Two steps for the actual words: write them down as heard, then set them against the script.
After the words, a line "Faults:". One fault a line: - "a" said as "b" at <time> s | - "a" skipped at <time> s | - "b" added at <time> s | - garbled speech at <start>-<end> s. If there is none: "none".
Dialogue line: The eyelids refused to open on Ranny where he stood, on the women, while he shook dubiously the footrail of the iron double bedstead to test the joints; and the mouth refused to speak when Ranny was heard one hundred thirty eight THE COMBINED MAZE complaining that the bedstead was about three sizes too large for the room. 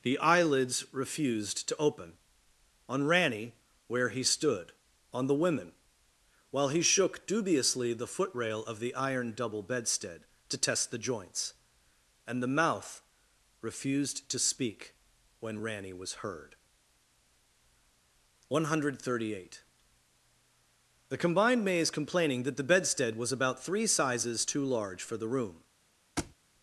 The eyelids refused to open on Ranny where he stood, on the women, while he shook dubiously the footrail of the iron double bedstead to test the joints; and the mouth refused to speak when Ranny was heard one hundred thirty eight THE COMBINED MAZE complaining that the bedstead was about three sizes too large for the room.
Faults:
none